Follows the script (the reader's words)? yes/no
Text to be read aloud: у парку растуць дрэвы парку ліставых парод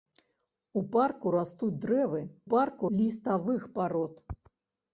yes